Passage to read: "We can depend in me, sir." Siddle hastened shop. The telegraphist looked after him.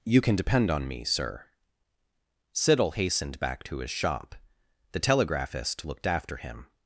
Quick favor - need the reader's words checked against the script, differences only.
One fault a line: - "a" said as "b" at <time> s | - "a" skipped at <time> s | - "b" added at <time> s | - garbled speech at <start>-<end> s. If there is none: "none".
- "We" said as "You" at 0.0 s
- "in" said as "on" at 0.7 s
- "back to his" added at 3.4 s